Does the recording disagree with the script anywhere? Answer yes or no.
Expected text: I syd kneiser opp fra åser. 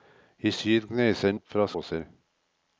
no